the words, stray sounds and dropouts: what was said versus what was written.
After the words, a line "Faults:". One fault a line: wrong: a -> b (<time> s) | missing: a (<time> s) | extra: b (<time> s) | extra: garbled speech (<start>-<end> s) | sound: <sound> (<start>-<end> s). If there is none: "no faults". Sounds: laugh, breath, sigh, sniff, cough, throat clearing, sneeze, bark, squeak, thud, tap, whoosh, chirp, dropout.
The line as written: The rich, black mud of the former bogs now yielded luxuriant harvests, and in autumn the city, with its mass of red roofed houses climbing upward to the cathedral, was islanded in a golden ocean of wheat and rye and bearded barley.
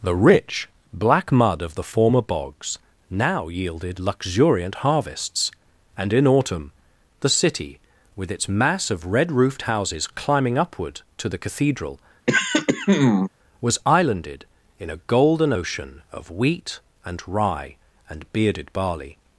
The rich, black mud of the former bogs now yielded luxuriant harvests, and in autumn the city, with its mass of red roofed houses climbing upward to the cathedral, was islanded in a golden ocean of wheat and rye and bearded barley.
Faults:
sound: throat clearing (12.3-13.3 s)